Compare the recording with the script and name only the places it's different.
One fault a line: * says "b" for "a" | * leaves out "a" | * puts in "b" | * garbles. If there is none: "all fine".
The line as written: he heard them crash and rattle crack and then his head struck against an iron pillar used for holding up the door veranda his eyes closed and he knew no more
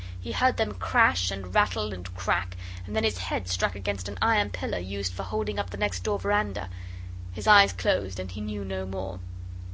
* puts in "and"
* puts in "next"